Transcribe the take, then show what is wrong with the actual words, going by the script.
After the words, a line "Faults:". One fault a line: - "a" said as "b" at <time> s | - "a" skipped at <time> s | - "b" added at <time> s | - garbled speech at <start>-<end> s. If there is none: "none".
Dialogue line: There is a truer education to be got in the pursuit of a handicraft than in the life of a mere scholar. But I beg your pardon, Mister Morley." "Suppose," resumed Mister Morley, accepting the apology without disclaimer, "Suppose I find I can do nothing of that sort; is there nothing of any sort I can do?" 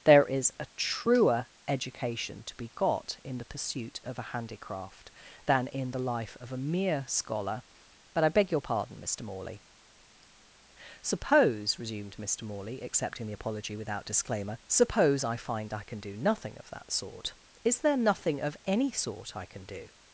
There is a truer education to be got in the pursuit of a handicraft than in the life of a mere scholar. But I beg your pardon, Mister Morley." "Suppose," resumed Mister Morley, accepting the apology without disclaimer, "Suppose I find I can do nothing of that sort; is there nothing of any sort I can do?"
Faults:
none